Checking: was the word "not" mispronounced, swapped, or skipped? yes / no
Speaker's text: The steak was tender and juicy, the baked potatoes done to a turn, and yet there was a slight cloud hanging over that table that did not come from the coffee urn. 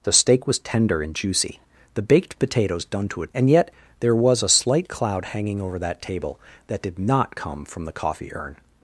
no